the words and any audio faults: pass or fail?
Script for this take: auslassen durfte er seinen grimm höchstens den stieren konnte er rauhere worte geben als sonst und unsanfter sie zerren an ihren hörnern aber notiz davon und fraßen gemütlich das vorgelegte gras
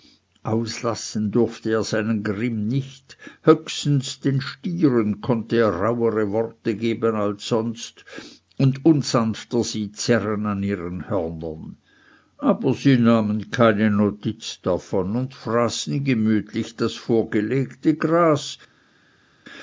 fail